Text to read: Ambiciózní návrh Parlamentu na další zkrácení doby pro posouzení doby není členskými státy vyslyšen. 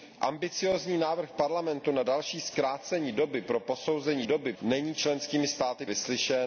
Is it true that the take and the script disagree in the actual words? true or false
false